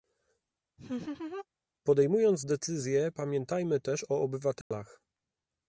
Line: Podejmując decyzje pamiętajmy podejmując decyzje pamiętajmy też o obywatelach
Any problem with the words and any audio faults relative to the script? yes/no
yes